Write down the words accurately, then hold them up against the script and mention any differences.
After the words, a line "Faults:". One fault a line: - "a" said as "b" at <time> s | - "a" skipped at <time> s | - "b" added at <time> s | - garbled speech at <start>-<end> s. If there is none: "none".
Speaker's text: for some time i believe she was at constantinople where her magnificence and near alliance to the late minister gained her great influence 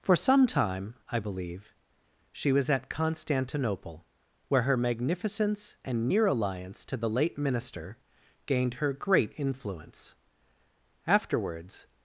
for some time i believe she was at constantinople where her magnificence and near alliance to the late minister gained her great influence afterwards
Faults:
- "afterwards" added at 11.1 s